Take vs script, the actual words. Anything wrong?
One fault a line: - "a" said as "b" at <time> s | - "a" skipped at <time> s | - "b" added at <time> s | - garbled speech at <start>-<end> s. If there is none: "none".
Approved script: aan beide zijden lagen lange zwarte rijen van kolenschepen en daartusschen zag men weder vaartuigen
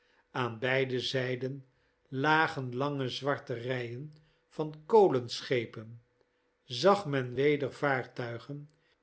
- "en daartusschen" skipped at 6.0 s